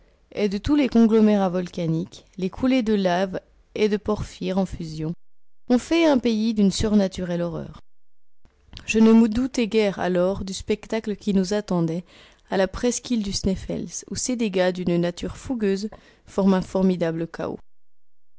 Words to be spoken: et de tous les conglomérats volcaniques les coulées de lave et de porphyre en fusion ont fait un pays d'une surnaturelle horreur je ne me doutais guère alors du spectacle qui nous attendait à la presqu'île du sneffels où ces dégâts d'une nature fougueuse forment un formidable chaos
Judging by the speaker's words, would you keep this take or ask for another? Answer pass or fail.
pass